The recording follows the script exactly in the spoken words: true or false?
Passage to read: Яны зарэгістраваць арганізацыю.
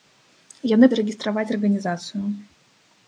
true